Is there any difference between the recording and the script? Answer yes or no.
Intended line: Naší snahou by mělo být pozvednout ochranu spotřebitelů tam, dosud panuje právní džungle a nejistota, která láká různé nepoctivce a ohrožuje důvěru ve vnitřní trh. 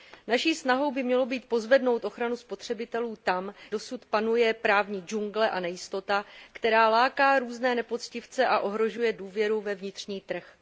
no